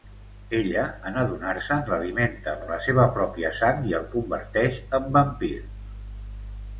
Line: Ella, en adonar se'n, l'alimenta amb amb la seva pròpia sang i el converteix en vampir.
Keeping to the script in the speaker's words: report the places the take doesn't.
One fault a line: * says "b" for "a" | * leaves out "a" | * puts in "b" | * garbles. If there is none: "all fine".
all fine